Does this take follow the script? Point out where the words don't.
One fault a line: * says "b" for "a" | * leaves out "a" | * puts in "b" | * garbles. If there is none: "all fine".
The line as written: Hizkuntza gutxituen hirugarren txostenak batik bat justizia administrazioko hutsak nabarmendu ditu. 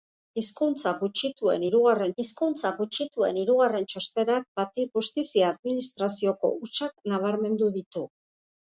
* puts in "hizkuntza gutxituen hirugarren"
* leaves out "bat"